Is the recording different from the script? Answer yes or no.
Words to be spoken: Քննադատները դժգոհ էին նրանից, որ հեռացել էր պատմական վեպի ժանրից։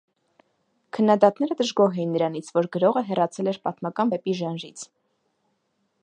yes